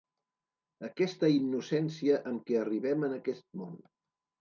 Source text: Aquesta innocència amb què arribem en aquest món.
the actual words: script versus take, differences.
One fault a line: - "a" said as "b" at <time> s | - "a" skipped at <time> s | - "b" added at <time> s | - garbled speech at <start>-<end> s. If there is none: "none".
none